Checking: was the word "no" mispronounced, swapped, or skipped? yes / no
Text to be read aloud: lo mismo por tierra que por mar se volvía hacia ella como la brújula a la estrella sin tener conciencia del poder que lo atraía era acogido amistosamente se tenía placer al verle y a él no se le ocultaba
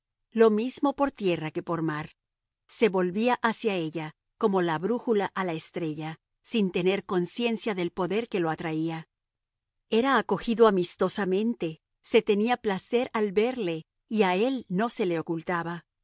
no